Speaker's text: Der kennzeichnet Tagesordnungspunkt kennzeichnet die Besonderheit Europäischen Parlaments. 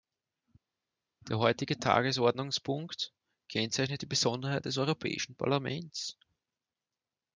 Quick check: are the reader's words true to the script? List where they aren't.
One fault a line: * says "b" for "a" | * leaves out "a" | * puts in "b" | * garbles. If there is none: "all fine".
* says "heutige" for "kennzeichnet"
* puts in "des"